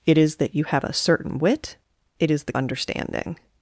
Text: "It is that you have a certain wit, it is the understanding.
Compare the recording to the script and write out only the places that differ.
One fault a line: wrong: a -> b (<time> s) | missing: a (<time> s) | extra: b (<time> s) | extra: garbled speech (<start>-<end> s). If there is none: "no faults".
no faults